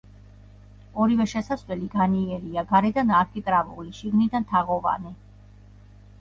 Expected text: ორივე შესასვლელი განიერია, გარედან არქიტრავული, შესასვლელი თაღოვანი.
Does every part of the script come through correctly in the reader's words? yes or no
no